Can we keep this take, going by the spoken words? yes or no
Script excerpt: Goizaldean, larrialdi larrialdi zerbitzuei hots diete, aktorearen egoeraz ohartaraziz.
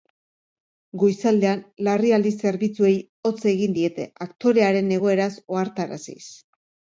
no